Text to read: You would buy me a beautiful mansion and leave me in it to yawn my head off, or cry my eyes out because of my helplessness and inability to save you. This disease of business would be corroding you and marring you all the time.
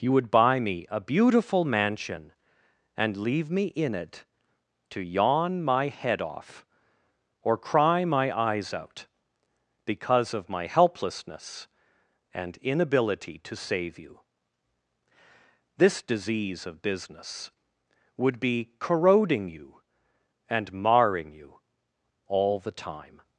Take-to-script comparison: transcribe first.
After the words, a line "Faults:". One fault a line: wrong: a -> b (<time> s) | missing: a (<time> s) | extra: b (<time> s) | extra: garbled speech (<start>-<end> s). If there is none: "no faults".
You would buy me a beautiful mansion and leave me in it to yawn my head off, or cry my eyes out because of my helplessness and inability to save you. This disease of business would be corroding you and marring you all the time.
Faults:
no faults